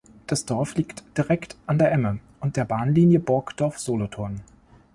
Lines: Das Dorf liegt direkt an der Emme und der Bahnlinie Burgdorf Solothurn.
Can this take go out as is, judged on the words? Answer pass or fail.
pass